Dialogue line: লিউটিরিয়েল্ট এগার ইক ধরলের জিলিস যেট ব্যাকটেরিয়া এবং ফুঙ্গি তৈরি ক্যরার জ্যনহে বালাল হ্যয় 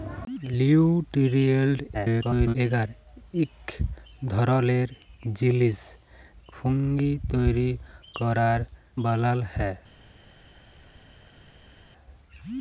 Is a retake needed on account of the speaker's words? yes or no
yes